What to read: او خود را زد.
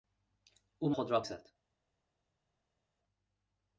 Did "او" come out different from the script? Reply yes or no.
no